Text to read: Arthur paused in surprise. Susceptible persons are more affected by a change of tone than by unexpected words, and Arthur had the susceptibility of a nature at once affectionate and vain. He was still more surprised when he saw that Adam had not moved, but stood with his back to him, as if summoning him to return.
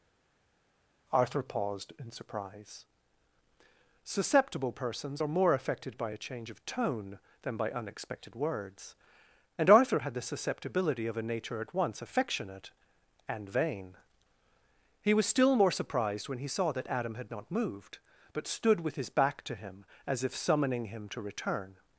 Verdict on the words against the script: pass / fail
pass